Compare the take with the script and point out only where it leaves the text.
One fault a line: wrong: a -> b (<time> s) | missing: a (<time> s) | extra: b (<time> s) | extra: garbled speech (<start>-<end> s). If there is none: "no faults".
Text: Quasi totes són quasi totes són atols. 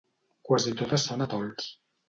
missing: quasi totes són (1.3 s)